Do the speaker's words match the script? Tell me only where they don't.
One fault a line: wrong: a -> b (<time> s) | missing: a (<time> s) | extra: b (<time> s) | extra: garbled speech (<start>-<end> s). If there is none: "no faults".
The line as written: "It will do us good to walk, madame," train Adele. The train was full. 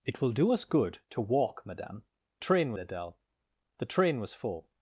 no faults